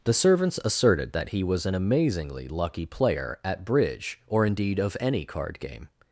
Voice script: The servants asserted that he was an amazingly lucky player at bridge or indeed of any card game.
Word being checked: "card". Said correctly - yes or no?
yes